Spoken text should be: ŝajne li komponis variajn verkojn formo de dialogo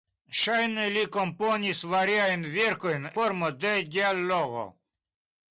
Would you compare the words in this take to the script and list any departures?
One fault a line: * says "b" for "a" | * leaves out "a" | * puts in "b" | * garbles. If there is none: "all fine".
all fine